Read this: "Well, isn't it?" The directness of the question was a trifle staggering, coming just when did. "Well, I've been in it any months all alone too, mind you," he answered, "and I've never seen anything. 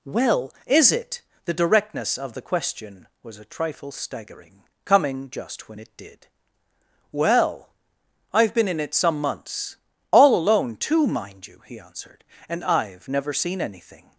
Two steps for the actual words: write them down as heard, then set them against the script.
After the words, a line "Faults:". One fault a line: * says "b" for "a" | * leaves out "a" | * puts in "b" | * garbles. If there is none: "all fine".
"Well, is it?" The directness of the question was a trifle staggering, coming just when it did. "Well, I've been in it some months all alone too, mind you," he answered, "and I've never seen anything.
Faults:
* says "is" for "isn't"
* puts in "it"
* says "some" for "any"